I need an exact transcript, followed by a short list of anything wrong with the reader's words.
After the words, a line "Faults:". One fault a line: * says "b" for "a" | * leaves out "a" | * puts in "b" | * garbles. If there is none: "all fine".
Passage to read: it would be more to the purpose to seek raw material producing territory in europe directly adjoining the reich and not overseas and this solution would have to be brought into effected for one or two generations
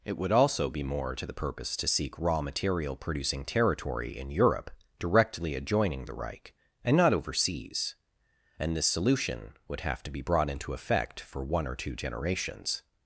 it would also be more to the purpose to seek raw material producing territory in europe directly adjoining the reich and not overseas and this solution would have to be brought into effect for one or two generations
Faults:
* puts in "also"
* says "effect" for "effected"